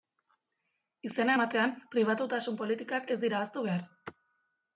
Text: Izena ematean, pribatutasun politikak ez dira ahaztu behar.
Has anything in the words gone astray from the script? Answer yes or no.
no